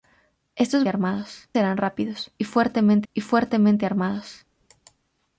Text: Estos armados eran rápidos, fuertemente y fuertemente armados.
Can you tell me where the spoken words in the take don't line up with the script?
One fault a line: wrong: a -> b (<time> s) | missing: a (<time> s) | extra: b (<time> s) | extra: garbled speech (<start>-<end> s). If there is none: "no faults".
no faults